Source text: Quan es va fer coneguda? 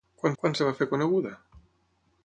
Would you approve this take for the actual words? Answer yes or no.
no